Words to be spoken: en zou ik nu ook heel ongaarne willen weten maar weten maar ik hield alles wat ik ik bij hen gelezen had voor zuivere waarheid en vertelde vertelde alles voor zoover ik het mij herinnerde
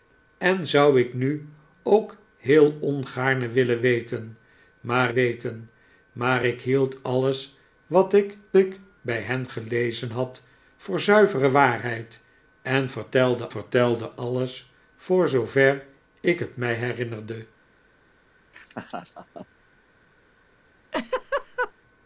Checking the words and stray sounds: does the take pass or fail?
fail